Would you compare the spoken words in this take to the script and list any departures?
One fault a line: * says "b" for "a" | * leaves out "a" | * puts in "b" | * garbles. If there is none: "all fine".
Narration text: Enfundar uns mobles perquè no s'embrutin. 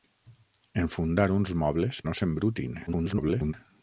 * leaves out "perquè"
* garbles